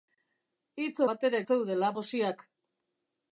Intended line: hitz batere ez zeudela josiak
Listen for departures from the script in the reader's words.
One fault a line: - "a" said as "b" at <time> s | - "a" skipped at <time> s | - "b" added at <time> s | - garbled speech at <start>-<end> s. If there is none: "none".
none